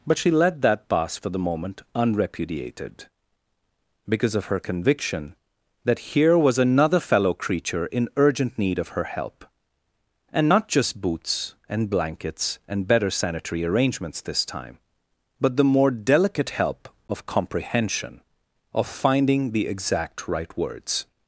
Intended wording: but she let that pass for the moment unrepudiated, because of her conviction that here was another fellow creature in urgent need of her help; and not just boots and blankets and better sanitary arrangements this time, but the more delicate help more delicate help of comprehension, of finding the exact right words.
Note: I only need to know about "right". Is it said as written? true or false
true